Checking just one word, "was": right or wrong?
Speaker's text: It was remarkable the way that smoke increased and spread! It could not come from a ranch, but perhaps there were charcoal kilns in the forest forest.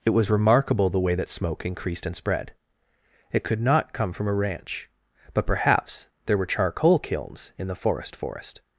right